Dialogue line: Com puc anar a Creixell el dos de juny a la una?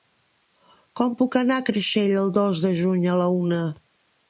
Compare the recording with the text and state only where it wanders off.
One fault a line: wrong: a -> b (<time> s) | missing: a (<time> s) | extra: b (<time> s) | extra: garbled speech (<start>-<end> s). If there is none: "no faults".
no faults